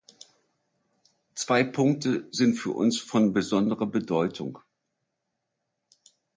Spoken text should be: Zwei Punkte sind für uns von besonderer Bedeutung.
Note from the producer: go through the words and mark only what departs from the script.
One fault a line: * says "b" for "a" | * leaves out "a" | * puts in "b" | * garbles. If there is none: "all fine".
all fine